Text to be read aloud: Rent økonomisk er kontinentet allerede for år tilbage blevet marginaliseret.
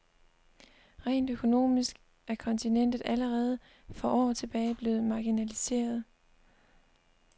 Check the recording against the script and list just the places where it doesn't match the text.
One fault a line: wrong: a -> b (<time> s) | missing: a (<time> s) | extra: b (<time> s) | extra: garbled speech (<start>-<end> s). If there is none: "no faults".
no faults